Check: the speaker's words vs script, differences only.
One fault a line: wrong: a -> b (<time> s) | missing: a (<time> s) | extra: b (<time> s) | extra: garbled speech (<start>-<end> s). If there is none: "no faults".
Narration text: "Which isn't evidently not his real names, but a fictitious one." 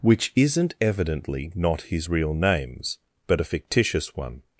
no faults